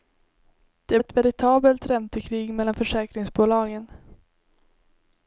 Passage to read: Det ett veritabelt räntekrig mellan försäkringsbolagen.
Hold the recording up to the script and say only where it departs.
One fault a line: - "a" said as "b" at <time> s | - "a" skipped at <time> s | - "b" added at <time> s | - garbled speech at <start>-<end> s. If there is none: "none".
none